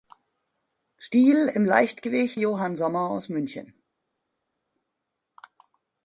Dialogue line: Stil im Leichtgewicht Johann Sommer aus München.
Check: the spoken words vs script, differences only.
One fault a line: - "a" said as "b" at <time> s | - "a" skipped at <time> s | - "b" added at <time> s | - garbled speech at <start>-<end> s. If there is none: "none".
none